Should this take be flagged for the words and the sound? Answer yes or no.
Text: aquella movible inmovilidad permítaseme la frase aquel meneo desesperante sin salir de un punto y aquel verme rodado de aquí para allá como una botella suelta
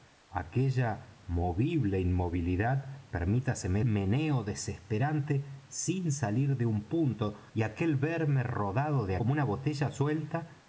yes